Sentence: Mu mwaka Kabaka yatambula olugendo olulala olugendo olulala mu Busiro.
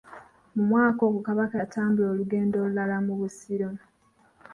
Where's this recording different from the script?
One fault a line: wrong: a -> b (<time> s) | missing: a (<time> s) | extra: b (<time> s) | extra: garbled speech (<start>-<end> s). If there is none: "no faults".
extra: ogwo (1.1 s)
missing: olugendo olulala (3.0 s)